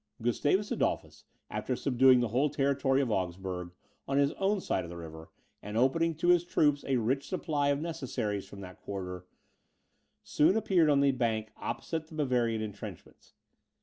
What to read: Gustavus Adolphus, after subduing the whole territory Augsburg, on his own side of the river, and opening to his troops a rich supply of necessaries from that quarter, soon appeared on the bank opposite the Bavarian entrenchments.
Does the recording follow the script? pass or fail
fail